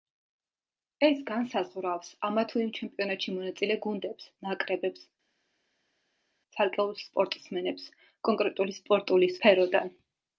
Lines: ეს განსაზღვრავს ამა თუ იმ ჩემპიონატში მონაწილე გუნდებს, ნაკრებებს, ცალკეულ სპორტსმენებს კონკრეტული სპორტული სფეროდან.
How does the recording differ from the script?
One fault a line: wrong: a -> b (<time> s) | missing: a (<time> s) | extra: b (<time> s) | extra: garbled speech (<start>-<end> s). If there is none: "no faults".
no faults